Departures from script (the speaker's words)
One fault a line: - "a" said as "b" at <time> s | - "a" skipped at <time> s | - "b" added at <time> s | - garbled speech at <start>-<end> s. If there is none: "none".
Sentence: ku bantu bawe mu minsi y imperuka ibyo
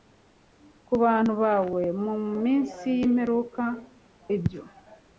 none